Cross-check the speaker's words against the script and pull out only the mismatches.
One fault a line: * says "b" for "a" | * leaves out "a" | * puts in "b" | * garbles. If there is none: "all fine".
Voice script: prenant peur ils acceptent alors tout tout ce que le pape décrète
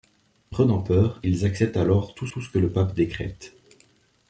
all fine